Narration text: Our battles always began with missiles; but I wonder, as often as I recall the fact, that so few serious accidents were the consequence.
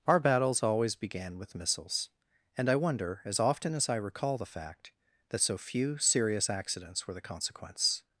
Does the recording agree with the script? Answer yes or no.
no